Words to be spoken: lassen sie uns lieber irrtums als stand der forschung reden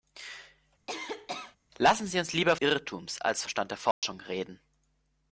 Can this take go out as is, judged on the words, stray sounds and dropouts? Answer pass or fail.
fail